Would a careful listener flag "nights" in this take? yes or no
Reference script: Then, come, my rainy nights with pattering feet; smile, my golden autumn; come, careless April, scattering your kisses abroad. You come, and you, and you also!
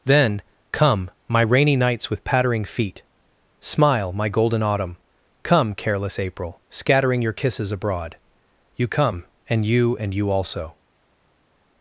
no